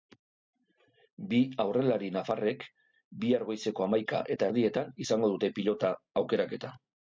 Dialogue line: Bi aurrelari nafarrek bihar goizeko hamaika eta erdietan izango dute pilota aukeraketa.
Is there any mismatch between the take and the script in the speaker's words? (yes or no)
no